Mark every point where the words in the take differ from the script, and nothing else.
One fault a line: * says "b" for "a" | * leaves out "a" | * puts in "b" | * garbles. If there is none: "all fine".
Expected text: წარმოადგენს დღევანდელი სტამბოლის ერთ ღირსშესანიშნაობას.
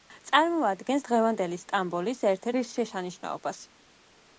all fine